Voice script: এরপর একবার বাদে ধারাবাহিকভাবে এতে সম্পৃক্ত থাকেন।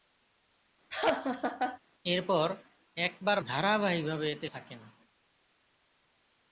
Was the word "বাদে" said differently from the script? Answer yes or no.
yes